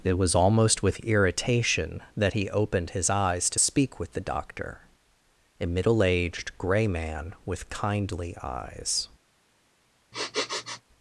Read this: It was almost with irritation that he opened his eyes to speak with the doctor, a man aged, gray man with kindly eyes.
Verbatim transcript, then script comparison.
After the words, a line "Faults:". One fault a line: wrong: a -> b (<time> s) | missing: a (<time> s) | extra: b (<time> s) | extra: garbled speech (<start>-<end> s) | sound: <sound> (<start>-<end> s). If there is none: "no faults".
It was almost with irritation that he opened his eyes to speak with the doctor, a middle aged, gray man with kindly eyes.
Faults:
wrong: man -> middle (5.7 s)
sound: sniff (10.1-10.8 s)